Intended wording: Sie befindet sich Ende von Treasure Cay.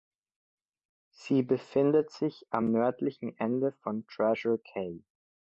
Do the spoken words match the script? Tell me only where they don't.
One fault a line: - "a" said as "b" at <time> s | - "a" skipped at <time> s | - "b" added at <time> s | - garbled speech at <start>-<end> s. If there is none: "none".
- "am nördlichen" added at 2.5 s